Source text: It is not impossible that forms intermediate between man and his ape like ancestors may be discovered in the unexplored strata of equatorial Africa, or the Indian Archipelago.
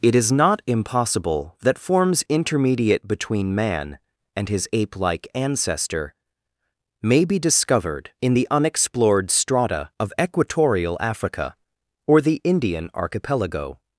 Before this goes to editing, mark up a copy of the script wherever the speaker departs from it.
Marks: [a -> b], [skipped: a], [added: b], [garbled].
It is not impossible that forms intermediate between man and his ape like [ancestors -> ancestor] may be discovered in the unexplored strata of equatorial Africa, or the Indian Archipelago.